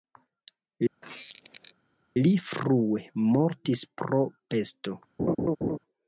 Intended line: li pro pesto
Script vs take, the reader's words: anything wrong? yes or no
yes